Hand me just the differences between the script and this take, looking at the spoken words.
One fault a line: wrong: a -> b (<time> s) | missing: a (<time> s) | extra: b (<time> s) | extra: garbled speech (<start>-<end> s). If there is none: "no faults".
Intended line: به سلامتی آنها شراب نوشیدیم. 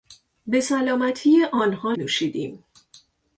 missing: شراب (1.9 s)